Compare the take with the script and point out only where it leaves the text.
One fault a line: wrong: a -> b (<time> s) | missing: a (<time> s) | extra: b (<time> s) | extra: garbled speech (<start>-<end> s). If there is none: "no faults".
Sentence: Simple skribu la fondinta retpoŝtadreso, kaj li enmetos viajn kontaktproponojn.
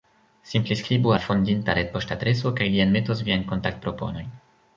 no faults